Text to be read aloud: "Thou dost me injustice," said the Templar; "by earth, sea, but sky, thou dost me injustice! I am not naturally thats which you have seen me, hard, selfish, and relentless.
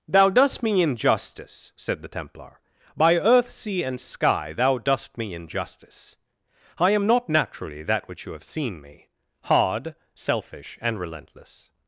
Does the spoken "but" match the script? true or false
false